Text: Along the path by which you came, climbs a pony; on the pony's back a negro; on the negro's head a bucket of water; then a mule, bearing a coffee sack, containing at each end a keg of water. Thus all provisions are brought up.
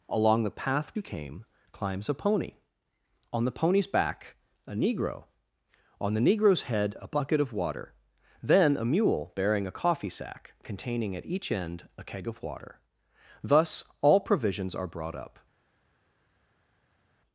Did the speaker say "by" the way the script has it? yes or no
no